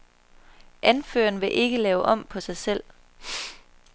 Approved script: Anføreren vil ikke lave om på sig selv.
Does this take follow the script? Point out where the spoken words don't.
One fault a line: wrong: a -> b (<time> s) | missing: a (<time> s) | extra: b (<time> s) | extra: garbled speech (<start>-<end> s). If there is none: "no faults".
no faults